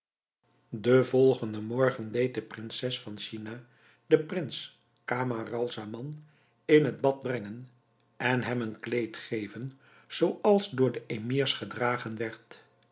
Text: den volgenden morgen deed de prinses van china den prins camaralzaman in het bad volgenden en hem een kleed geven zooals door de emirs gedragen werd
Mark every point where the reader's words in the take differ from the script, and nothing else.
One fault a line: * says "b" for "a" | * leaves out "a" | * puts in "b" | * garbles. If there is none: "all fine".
* says "brengen" for "volgenden"